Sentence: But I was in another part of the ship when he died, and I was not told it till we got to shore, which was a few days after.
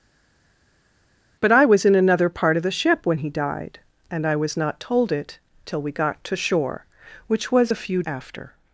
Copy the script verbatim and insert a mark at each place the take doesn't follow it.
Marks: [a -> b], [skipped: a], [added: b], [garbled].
But I was in another part of the ship when he died, and I was not told it till we got to shore, which was a few [skipped: days] after.